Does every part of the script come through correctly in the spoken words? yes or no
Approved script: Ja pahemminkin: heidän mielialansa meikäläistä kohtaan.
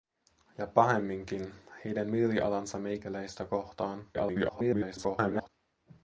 no